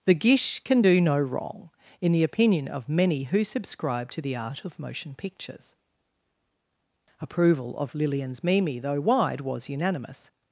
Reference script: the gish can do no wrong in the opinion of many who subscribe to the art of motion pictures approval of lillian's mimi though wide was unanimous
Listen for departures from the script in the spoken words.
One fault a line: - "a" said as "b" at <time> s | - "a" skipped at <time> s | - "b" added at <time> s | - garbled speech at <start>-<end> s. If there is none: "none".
none